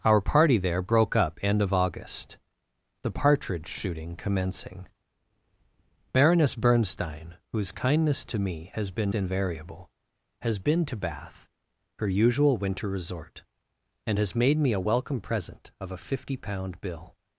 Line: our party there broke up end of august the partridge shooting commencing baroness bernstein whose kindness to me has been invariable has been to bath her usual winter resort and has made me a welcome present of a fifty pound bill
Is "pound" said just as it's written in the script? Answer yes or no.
yes